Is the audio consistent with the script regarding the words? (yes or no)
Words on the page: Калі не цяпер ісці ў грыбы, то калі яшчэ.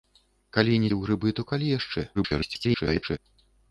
no